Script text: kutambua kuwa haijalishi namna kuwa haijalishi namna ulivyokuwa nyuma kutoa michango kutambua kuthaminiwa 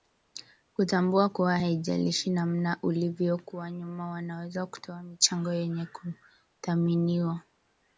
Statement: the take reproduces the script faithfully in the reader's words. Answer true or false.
false